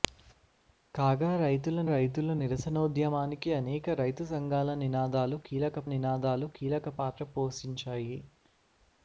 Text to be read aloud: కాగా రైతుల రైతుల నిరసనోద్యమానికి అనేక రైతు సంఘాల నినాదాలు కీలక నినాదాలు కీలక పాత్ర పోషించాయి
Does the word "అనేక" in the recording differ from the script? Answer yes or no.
no